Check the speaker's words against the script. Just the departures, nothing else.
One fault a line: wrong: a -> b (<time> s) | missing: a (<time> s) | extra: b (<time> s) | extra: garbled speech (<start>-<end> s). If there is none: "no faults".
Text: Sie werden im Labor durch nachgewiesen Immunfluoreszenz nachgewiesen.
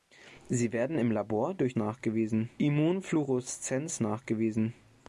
no faults